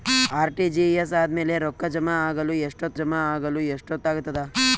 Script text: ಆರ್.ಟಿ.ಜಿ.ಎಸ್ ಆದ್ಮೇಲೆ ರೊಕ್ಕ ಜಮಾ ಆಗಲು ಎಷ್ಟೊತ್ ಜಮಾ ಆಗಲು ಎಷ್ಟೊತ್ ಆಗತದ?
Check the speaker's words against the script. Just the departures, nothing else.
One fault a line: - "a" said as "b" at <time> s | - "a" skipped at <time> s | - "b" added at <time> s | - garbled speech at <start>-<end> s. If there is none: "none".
none